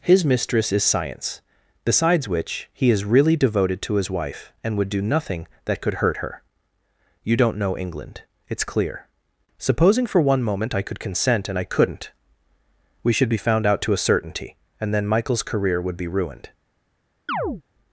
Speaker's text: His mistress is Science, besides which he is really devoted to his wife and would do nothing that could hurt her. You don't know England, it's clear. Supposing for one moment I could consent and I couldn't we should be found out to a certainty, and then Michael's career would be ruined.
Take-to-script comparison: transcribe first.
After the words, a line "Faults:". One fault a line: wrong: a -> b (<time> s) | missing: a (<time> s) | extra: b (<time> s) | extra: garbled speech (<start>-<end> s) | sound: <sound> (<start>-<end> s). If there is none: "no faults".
His mistress is Science, besides which he is really devoted to his wife and would do nothing that could hurt her. You don't know England, it's clear. Supposing for one moment I could consent and I couldn't we should be found out to a certainty, and then Michael's career would be ruined.
Faults:
sound: chirp (17.3-17.6 s)